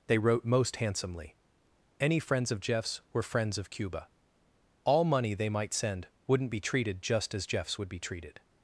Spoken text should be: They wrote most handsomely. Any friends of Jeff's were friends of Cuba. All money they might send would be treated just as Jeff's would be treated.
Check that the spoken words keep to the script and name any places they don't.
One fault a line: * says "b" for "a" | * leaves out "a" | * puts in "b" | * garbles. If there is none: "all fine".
* says "wouldn't" for "would"